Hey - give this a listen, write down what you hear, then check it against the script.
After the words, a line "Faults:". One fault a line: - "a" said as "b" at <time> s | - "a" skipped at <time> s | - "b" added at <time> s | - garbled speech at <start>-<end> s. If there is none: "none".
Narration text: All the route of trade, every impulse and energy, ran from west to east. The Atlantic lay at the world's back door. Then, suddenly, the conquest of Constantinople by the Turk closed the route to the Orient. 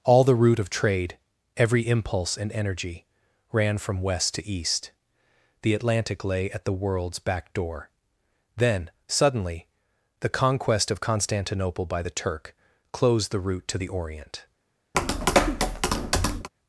All the route of trade, every impulse and energy, ran from west to east. The Atlantic lay at the world's back door. Then, suddenly, the conquest of Constantinople by the Turk closed the route to the Orient.
Faults:
none